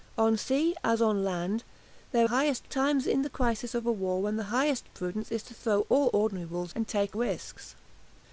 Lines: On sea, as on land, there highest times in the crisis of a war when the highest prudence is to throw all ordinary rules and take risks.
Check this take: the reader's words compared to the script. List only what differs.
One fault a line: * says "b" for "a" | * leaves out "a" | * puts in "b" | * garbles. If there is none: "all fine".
all fine